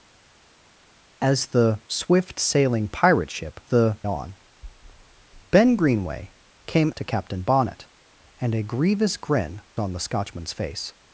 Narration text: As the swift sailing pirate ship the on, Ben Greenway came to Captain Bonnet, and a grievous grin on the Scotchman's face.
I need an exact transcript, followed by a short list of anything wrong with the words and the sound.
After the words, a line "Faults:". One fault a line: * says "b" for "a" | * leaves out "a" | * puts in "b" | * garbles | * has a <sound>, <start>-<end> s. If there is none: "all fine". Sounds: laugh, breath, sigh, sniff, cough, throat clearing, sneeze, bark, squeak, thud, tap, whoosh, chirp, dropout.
As the swift sailing pirate ship the on, Ben Greenway came to Captain Bonnet, and a grievous grin on the Scotchman's face.
Faults:
all fine